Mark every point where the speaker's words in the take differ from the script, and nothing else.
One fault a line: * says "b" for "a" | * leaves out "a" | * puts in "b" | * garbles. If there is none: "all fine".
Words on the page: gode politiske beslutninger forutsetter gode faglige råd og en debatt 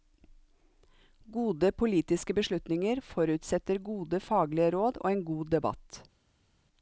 * puts in "god"